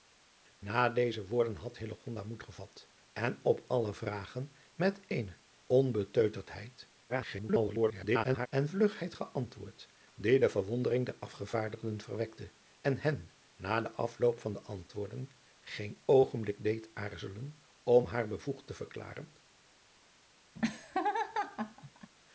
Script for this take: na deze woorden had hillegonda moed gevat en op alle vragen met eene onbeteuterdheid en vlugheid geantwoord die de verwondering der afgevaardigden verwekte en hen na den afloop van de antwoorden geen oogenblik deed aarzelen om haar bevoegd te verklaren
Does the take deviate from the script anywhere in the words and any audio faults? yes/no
yes